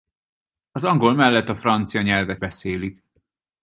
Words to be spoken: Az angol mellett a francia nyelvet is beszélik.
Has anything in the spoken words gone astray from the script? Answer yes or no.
yes